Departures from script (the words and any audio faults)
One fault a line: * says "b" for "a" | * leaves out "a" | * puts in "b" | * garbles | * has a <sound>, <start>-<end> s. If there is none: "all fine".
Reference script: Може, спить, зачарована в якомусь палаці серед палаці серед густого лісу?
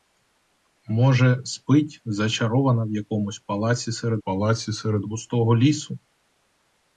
all fine